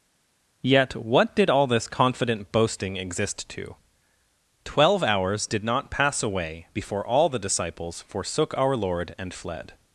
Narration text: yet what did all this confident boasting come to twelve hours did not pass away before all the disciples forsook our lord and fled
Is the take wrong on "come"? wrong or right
wrong